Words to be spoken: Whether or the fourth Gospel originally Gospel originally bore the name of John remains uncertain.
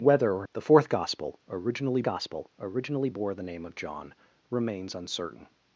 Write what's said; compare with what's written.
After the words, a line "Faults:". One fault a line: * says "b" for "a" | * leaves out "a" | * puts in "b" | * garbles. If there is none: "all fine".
Whether or the fourth Gospel originally Gospel originally bore the name of John remains uncertain.
Faults:
all fine